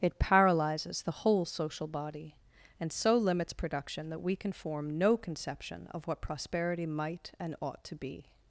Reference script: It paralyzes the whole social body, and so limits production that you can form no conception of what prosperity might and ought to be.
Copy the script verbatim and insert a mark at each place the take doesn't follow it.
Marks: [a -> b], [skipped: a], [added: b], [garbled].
It paralyzes the whole social body, and so limits production that [you -> we] can form no conception of what prosperity might and ought to be.